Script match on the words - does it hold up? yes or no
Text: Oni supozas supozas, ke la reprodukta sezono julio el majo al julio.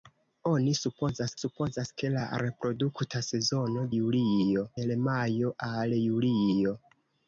yes